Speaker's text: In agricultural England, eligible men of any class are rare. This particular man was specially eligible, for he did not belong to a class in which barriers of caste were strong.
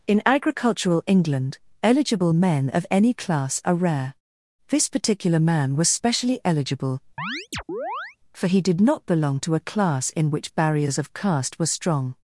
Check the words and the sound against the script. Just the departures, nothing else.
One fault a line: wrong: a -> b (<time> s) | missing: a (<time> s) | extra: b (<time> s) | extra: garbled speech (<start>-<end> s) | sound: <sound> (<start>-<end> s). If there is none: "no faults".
sound: chirp (7.2-8.2 s)